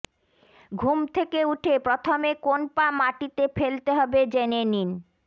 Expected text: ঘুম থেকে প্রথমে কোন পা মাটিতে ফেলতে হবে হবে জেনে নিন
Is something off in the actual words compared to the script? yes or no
yes